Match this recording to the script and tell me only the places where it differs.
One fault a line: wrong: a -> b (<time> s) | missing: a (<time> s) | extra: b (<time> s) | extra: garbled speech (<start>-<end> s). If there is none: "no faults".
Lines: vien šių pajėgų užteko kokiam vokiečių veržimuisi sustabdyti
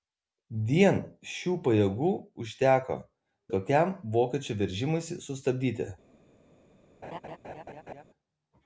no faults